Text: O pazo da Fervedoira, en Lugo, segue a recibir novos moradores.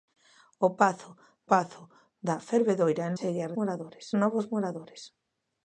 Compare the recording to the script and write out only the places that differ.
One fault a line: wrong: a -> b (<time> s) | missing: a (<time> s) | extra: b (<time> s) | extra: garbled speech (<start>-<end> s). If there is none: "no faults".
extra: pazo (1.5 s)
missing: Lugo (3.1 s)
wrong: recibir -> moradores (3.6 s)